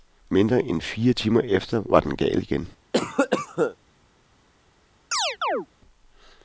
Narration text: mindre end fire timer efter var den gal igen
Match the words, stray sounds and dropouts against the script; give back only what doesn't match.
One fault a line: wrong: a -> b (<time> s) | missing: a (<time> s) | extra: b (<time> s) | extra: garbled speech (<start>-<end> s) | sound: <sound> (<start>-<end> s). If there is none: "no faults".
sound: cough (2.9-3.8 s)
sound: chirp (5.1-5.7 s)